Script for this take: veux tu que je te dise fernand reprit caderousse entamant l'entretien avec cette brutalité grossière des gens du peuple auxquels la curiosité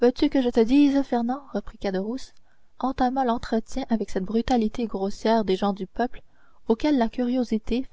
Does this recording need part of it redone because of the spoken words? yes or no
no